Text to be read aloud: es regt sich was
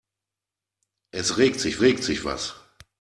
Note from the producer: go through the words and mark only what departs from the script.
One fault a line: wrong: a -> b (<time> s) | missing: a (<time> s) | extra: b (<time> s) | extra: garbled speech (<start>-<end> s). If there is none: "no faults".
extra: regt sich (1.8 s)